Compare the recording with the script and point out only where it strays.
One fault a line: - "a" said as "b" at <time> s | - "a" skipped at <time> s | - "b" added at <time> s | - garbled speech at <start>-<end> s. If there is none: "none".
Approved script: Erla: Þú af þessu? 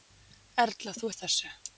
none